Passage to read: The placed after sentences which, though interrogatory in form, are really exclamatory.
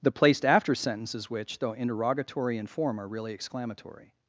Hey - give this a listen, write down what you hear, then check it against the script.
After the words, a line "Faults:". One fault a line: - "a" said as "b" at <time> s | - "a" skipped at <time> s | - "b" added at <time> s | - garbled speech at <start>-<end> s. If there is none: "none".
The placed after sentences which, though interrogatory in form, are really exclamatory.
Faults:
none